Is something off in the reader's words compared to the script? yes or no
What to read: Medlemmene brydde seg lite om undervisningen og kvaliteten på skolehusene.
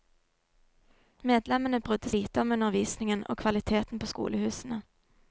yes